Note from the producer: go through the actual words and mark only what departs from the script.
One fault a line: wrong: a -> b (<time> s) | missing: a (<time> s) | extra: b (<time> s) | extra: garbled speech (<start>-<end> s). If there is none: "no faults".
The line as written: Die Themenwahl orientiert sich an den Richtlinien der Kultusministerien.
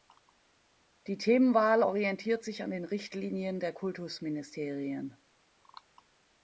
no faults